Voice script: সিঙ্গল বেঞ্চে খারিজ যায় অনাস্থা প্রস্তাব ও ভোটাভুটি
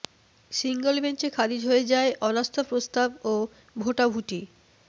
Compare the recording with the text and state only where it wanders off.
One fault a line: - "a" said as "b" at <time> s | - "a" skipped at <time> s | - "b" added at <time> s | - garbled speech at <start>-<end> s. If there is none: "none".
- "হয়ে" added at 1.6 s